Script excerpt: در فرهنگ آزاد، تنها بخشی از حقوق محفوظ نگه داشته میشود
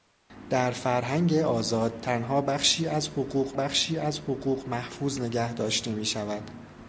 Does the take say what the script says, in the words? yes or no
no